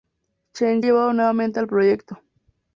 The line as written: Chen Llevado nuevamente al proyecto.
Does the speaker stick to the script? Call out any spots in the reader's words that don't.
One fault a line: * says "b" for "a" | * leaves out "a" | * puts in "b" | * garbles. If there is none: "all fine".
all fine